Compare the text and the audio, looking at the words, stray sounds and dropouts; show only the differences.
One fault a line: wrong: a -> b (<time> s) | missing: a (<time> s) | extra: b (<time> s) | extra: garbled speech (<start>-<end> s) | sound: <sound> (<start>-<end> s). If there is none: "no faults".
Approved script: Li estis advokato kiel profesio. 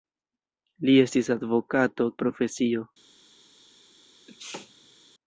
missing: kiel (2.1 s)
sound: sneeze (4.3-5.0 s)